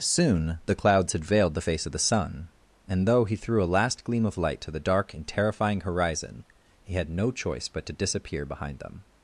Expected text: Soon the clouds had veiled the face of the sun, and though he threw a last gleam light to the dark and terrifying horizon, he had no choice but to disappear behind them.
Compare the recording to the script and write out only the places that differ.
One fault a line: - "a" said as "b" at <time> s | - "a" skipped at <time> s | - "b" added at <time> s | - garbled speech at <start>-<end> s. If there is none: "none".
- "of" added at 4.3 s